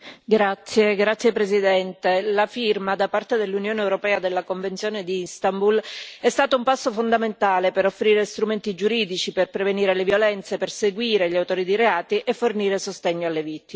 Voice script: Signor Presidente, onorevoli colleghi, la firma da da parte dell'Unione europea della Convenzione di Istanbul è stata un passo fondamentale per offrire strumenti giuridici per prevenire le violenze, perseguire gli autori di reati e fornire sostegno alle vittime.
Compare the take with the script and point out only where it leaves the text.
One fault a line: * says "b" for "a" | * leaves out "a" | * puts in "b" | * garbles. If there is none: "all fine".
* leaves out "da"